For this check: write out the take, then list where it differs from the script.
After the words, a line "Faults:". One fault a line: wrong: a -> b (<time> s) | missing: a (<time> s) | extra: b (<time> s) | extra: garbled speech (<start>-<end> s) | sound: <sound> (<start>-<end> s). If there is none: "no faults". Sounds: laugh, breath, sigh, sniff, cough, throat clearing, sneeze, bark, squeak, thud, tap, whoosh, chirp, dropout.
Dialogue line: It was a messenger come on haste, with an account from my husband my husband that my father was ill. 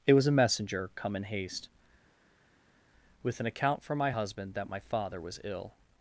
It was a messenger come in haste, with an account from my husband that my father was ill.
Faults:
wrong: on -> in (1.1 s)
missing: my husband (4.5 s)